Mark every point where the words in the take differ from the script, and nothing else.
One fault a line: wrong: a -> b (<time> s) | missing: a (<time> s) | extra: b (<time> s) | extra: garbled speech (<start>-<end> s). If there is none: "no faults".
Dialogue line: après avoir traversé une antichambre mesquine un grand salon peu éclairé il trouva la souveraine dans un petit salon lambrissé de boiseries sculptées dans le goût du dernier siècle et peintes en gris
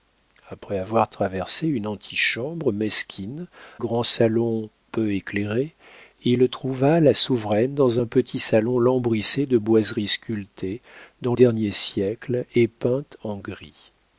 missing: un (3.5 s)
missing: le goût du (11.3 s)